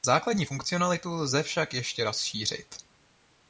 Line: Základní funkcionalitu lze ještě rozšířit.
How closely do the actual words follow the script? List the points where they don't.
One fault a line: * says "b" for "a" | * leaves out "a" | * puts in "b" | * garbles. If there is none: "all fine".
* puts in "však"